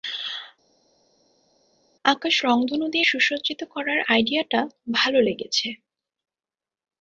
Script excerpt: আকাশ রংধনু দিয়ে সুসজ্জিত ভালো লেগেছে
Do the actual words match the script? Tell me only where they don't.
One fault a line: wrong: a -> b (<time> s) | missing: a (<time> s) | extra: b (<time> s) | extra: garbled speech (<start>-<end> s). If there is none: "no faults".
extra: করার আইডিয়াটা (3.6 s)